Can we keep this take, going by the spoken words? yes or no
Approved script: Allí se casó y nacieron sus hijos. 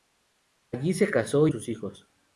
no